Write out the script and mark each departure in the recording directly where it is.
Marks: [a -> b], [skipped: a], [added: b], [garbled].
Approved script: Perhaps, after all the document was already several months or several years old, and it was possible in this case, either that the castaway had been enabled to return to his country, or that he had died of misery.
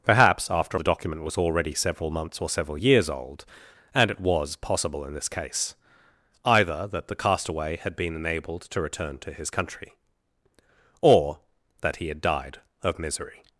Perhaps, after [skipped: all] the document was already several months or several years old, and it was possible in this case, either that the castaway had been enabled to return to his country, or that he had died of misery.